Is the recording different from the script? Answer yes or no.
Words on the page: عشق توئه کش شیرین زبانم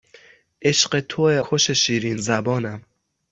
no